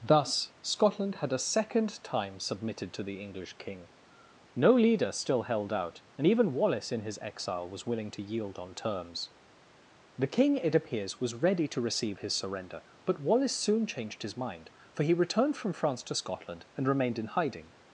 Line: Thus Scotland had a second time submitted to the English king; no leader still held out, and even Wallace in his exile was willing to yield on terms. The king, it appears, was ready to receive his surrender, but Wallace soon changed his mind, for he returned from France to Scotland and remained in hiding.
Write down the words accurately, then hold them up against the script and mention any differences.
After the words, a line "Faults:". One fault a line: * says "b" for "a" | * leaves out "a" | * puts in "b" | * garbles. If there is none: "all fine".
Thus Scotland had a second time submitted to the English king; no leader still held out, and even Wallace in his exile was willing to yield on terms. The king, it appears, was ready to receive his surrender, but Wallace soon changed his mind, for he returned from France to Scotland and remained in hiding.
Faults:
all fine